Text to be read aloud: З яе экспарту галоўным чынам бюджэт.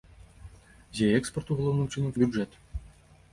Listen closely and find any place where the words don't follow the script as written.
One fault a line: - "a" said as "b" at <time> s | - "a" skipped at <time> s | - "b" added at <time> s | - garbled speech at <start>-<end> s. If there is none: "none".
none